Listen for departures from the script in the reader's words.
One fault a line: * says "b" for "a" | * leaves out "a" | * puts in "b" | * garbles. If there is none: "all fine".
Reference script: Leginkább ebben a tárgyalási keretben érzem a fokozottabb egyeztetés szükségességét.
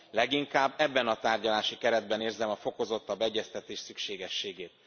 all fine